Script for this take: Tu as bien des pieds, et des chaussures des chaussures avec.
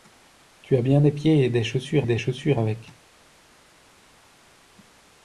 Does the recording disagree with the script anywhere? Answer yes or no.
no